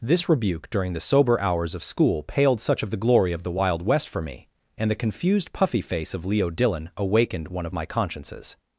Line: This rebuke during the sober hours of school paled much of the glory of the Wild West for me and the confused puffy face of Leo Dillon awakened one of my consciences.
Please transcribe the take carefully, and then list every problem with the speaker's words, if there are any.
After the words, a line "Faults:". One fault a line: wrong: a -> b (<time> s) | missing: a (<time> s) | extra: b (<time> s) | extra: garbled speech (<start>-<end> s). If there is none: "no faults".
This rebuke during the sober hours of school paled such of the glory of the Wild West for me and the confused puffy face of Leo Dillon awakened one of my consciences.
Faults:
wrong: much -> such (2.6 s)